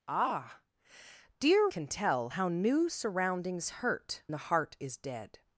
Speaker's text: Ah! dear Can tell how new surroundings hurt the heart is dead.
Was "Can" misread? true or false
false